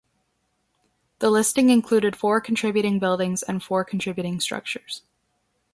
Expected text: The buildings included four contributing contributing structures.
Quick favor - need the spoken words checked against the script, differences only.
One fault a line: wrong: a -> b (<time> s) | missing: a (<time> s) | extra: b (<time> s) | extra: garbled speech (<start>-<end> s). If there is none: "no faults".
wrong: buildings -> listing (1.3 s)
extra: buildings and four (3.0 s)